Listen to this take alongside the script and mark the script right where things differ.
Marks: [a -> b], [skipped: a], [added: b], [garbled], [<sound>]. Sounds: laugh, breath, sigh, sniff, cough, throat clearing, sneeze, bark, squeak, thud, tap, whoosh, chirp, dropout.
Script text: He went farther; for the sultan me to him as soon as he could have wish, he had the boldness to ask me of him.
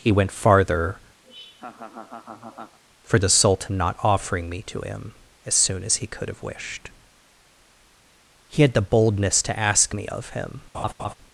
He went farther; [laugh] for the sultan [added: not offering] me to him as soon as he could have [wish, -> wished] he had the boldness to ask me of him. [laugh]